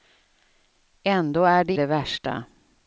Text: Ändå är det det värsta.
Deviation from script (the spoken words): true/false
false